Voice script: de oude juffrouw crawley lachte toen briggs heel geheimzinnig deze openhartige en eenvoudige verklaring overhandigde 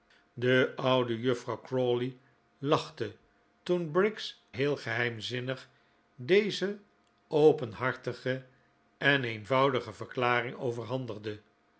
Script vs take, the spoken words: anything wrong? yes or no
no